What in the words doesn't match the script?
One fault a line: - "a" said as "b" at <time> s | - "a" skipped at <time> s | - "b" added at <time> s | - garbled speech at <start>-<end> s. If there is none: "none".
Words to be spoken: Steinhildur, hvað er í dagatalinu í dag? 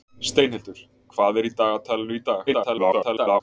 - garbled speech at 2.5-3.4 s